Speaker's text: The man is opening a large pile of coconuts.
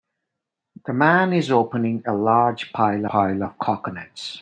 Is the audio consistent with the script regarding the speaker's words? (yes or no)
no